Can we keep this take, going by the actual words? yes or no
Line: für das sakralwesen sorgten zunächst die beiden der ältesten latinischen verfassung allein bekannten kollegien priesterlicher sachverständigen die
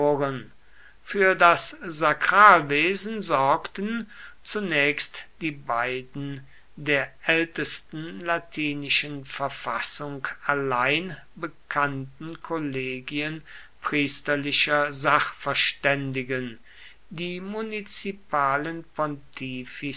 yes